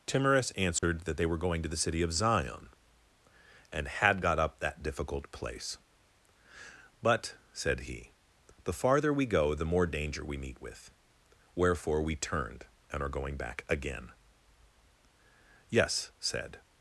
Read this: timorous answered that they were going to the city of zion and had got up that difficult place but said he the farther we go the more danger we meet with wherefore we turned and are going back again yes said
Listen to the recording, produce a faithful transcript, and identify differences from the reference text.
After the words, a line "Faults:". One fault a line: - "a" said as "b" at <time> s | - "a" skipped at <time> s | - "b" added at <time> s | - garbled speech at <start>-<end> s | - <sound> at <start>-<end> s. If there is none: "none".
timorous answered that they were going to the city of zion and had got up that difficult place but said he the farther we go the more danger we meet with wherefore we turned and are going back again yes said
Faults:
- dropout at 0.8-0.8 s